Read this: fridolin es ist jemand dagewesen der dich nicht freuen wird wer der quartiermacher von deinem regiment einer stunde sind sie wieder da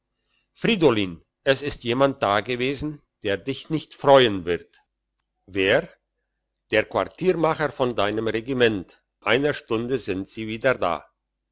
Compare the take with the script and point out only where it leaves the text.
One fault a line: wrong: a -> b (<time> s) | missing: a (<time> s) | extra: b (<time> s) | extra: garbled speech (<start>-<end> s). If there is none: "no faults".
no faults